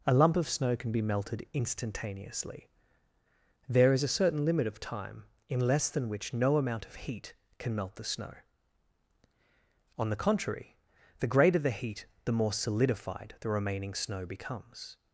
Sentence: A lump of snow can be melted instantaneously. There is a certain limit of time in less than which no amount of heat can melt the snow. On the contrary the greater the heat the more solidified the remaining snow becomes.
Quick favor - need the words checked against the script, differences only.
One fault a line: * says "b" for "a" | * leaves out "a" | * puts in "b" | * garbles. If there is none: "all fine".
all fine